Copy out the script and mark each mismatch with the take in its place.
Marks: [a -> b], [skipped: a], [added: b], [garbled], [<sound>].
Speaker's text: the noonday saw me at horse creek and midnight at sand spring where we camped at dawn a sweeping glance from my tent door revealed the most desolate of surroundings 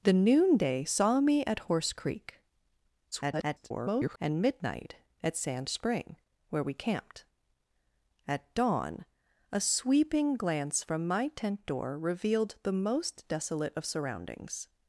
the noonday saw me at horse creek [garbled] and midnight at sand spring where we camped at dawn a sweeping glance from my tent door revealed the most desolate of surroundings